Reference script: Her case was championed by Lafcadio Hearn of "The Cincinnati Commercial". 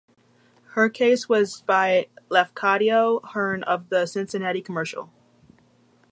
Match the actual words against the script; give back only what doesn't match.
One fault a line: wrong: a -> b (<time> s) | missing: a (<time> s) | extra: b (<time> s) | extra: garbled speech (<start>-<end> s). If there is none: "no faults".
missing: championed (1.6 s)